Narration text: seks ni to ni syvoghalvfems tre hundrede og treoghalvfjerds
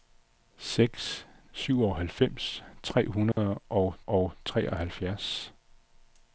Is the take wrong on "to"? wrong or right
wrong